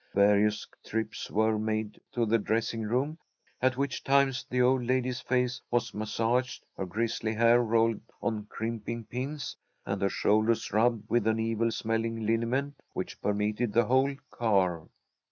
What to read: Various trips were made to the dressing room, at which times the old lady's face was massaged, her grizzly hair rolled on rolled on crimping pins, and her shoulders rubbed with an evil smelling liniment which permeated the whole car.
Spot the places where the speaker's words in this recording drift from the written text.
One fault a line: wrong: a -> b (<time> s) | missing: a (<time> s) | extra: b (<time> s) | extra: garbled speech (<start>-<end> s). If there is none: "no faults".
missing: rolled on (8.4 s)